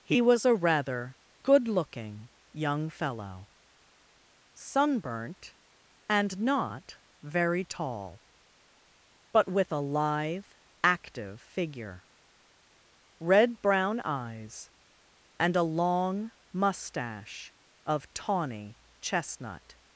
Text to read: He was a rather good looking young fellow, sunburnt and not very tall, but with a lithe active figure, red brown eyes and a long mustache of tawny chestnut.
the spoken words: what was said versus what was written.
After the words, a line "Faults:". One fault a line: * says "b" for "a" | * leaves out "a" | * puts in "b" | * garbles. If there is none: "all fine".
He was a rather good looking young fellow, sunburnt and not very tall, but with a lithe active figure, red brown eyes and a long mustache of tawny chestnut.
Faults:
all fine